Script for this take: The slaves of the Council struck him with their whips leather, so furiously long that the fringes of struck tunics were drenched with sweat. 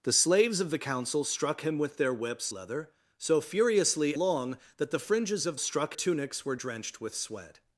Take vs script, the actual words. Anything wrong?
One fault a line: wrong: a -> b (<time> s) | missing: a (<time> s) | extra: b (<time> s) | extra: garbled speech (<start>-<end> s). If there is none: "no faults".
no faults